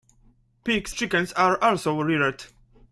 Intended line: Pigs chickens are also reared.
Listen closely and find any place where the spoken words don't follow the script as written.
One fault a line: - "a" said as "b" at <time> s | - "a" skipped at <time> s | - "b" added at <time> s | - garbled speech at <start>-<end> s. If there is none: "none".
none